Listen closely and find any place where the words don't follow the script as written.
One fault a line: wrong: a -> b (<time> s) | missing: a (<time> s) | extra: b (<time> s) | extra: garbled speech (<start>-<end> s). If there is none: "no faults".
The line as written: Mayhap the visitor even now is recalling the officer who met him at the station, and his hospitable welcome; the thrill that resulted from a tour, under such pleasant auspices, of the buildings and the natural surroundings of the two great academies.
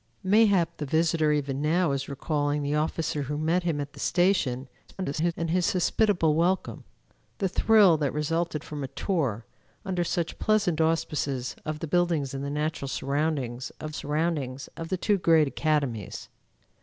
extra: garbled speech (4.9-5.3 s)
extra: surroundings of (13.9 s)